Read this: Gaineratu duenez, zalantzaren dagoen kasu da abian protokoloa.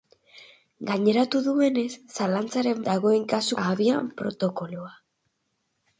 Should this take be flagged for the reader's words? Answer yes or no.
no